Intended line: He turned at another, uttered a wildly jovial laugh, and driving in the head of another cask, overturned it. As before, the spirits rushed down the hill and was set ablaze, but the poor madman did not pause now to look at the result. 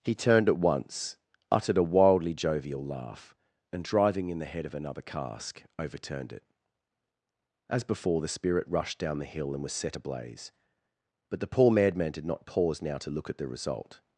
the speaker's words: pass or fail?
fail